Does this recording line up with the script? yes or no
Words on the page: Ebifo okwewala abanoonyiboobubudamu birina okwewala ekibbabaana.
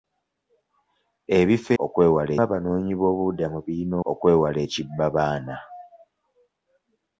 yes